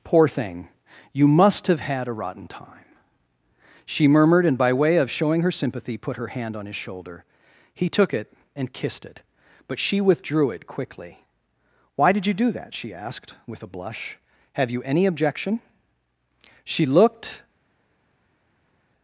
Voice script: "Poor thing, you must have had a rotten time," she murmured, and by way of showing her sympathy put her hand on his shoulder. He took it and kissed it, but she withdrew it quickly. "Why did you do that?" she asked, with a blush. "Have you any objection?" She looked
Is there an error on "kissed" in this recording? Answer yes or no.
no